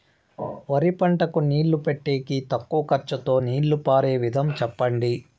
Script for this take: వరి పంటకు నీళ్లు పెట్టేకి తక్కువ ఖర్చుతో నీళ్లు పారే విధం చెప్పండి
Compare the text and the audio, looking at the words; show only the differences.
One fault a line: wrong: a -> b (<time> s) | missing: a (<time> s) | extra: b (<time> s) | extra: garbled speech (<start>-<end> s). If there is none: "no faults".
no faults